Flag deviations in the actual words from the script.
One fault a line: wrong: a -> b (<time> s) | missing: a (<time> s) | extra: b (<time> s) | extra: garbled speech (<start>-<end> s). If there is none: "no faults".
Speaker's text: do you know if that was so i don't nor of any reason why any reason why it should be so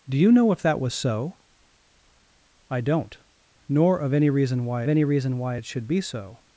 no faults